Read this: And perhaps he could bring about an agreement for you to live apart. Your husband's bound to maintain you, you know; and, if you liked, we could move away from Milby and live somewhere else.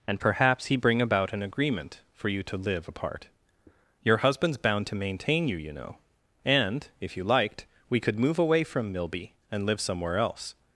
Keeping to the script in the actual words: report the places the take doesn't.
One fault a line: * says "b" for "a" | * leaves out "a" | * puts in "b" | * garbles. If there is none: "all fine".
* leaves out "could"